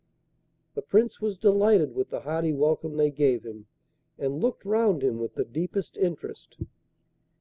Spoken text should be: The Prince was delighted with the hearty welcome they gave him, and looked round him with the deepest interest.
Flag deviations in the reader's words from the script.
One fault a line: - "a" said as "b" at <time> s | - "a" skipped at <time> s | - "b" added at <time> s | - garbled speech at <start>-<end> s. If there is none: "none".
none